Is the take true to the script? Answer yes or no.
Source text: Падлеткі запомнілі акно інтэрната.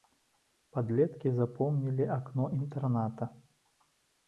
yes